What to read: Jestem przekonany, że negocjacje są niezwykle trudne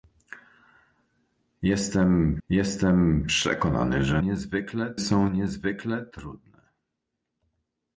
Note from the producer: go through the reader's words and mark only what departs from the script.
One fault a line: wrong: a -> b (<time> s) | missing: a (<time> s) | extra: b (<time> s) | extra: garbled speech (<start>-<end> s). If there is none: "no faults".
extra: jestem (2.5 s)
wrong: negocjacje -> niezwykle (4.2 s)